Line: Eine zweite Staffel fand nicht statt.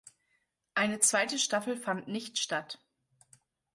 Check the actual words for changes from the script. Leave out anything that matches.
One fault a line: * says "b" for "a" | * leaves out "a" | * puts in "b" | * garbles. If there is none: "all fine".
all fine